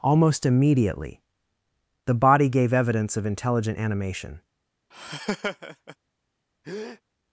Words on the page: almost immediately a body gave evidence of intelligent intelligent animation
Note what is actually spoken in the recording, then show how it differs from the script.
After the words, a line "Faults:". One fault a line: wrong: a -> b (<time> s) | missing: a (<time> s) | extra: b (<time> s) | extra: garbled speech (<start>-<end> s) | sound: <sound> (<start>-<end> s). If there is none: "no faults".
almost immediately the body gave evidence of intelligent animation
Faults:
wrong: a -> the (2.0 s)
missing: intelligent (3.8 s)
sound: laugh (4.9-6.0 s)
sound: breath (6.6-7.0 s)